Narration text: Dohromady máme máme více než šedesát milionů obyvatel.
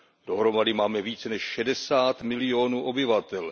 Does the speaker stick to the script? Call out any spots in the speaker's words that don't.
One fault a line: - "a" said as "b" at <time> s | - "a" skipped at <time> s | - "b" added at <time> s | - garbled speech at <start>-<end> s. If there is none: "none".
- "máme" skipped at 1.0 s